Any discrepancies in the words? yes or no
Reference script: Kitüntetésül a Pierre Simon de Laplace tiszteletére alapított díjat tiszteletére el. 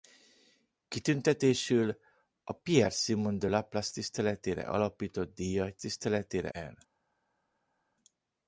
no